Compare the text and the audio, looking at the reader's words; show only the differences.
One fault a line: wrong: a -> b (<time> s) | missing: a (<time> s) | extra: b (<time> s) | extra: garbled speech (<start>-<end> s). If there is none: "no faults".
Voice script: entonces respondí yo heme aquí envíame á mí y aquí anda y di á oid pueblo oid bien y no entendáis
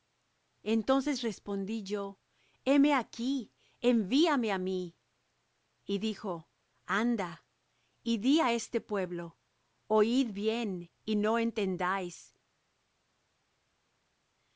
wrong: aquí -> dijo (6.0 s)
wrong: oid -> este (8.5 s)